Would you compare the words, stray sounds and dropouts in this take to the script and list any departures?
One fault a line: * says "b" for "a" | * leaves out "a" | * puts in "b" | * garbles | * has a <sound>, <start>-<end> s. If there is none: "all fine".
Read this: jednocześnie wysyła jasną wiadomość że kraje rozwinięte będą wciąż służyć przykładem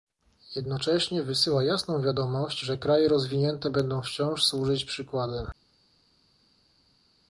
all fine